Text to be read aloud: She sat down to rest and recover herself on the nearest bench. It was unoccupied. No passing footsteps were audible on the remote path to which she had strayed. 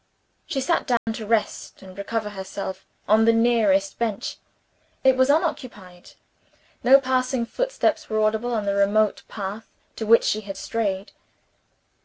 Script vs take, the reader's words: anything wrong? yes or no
no